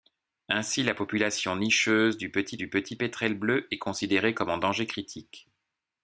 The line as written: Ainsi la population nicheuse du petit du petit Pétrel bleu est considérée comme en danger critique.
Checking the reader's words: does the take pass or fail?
pass